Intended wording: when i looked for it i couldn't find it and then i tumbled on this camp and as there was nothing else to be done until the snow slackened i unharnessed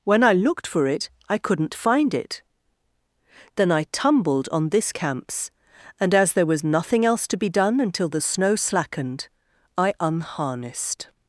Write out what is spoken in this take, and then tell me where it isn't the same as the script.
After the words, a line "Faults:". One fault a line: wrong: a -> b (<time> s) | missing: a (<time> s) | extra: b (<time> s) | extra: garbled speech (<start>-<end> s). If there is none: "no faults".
when i looked for it i couldn't find it then i tumbled on this camps and as there was nothing else to be done until the snow slackened i unharnessed
Faults:
missing: and (2.4 s)
wrong: camp -> camps (4.9 s)